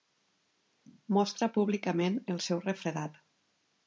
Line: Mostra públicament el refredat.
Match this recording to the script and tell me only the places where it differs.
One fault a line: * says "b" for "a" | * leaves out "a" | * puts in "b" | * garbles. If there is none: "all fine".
* puts in "seu"